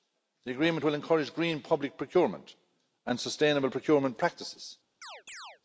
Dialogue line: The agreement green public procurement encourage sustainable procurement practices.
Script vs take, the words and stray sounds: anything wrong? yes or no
yes